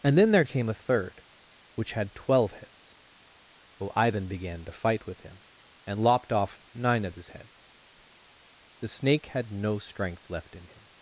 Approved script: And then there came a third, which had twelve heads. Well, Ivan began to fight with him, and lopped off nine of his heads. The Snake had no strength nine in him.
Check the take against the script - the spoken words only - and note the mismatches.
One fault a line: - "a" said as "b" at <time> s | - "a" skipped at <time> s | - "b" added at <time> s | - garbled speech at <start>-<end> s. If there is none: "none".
- "nine" said as "left" at 10.3 s